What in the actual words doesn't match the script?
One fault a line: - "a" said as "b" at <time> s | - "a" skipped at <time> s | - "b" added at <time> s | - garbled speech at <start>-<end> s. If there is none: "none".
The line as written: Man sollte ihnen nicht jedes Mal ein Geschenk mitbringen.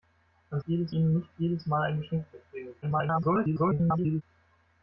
- "sollte" said as "jedes" at 0.7 s
- garbled speech at 2.8-4.2 s